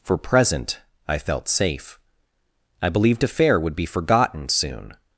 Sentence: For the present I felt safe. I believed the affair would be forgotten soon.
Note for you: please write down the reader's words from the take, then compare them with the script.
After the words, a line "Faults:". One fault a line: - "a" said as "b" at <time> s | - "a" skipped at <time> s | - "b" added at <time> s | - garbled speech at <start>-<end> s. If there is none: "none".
For present I felt safe. I believed affair would be forgotten soon.
Faults:
- "the" skipped at 0.2 s
- "the" skipped at 3.2 s